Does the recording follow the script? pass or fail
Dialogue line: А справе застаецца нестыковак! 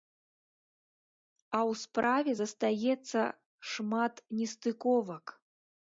fail